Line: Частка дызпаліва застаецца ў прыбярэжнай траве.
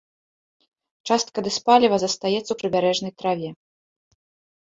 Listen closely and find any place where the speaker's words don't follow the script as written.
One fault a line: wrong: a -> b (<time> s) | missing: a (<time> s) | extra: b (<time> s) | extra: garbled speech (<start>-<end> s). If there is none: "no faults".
no faults